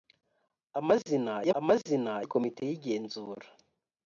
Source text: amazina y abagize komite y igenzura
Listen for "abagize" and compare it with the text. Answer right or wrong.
wrong